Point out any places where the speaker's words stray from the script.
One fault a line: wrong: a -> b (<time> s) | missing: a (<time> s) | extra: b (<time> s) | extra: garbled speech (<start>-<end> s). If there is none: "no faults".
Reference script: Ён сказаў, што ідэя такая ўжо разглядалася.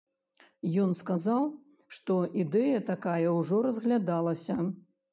no faults